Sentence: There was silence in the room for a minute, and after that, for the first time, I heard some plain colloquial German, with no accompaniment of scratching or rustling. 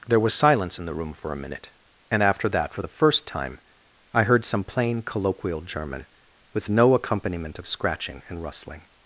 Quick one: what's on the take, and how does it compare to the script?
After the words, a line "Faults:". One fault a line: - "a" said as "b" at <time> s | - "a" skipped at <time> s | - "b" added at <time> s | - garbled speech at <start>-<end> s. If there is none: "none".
There was silence in the room for a minute, and after that, for the first time, I heard some plain colloquial German, with no accompaniment of scratching and rustling.
Faults:
- "or" said as "and" at 8.3 s